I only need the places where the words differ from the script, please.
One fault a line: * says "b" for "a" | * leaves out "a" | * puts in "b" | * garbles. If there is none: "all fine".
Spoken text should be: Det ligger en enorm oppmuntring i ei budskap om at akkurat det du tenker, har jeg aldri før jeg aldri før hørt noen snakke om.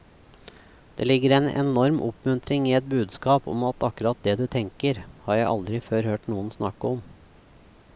* says "et" for "ei"
* leaves out "jeg aldri før"